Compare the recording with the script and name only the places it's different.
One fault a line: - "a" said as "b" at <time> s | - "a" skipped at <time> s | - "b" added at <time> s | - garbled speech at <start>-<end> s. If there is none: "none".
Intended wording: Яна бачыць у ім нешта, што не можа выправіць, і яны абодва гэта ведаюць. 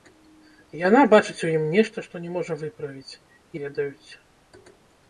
- "яны абодва гэта" skipped at 3.5 s